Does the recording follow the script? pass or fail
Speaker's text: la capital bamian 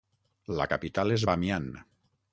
fail